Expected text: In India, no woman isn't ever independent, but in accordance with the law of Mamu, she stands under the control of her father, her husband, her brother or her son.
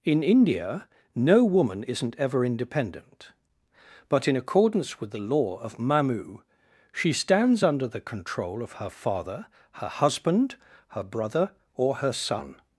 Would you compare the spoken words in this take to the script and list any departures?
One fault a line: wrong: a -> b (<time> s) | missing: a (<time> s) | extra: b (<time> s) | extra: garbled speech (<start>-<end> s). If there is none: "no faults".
no faults